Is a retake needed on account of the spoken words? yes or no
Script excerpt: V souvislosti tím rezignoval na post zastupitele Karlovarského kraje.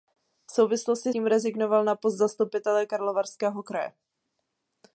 no